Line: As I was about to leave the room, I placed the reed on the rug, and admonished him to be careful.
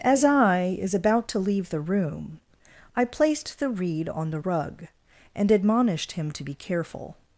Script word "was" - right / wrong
wrong